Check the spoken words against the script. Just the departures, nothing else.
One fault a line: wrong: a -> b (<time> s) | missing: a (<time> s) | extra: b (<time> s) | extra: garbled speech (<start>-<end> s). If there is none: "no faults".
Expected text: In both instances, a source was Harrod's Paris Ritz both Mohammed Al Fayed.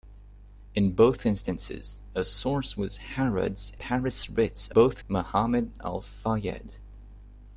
no faults